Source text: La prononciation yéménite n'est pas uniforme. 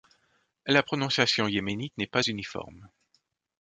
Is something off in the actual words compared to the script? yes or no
no